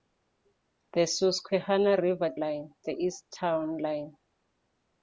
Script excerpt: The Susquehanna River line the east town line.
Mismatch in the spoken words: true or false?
false